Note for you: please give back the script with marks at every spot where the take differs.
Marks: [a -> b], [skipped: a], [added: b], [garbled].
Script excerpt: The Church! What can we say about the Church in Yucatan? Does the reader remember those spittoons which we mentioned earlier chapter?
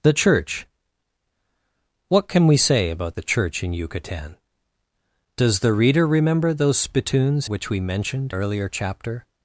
The Church! What can we say about the Church in Yucatan? Does the reader remember those spittoons which we mentioned earlier chapter?